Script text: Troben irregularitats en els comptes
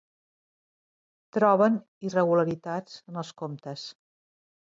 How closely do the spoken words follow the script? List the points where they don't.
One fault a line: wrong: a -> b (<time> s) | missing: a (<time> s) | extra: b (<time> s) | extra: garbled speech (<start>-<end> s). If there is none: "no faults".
no faults